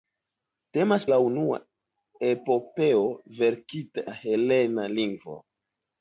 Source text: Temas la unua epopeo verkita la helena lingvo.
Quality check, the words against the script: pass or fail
pass